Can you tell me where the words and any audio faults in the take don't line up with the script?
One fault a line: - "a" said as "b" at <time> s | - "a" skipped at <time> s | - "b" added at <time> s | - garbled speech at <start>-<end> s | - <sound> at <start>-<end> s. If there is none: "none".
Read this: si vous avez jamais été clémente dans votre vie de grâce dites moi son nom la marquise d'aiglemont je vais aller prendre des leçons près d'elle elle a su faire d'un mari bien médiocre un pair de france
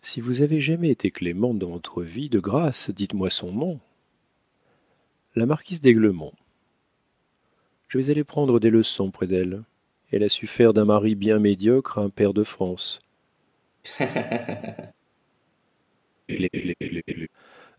- laugh at 13.8-14.9 s
- laugh at 16.3-17.3 s